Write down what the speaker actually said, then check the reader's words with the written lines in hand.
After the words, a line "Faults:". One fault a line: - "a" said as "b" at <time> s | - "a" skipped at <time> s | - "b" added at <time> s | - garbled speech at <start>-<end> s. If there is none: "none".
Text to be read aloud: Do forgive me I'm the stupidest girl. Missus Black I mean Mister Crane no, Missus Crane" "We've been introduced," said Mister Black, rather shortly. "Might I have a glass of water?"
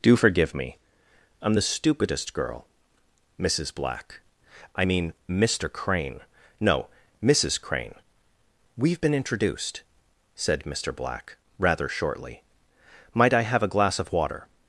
Do forgive me I'm the stupidest girl. Missus Black I mean Mister Crane no, Missus Crane" "We've been introduced," said Mister Black, rather shortly. "Might I have a glass of water?"
Faults:
none